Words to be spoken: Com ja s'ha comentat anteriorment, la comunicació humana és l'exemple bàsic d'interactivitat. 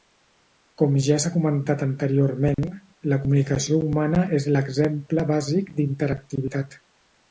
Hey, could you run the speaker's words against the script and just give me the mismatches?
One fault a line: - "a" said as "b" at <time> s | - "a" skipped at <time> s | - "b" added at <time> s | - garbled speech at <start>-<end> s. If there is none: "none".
none